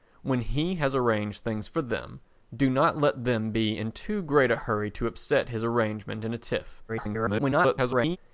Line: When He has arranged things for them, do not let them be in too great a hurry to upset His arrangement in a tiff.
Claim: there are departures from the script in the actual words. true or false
true